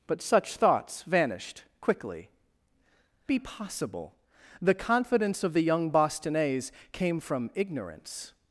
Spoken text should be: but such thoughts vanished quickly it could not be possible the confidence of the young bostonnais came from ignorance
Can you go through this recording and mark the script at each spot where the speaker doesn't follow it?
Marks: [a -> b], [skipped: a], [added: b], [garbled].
but such thoughts vanished quickly [skipped: it could not] be possible the confidence of the young bostonnais came from ignorance